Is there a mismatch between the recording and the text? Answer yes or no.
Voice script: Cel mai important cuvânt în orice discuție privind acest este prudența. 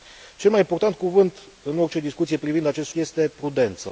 no